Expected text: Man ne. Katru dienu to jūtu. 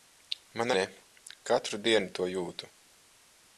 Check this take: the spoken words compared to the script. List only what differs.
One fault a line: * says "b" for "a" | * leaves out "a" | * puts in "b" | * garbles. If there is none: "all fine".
all fine